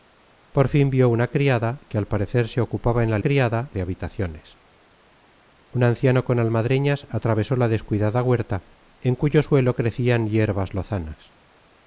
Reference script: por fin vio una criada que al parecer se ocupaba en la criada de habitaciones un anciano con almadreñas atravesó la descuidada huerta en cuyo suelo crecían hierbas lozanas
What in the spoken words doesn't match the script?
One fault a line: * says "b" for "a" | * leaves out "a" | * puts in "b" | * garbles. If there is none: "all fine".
all fine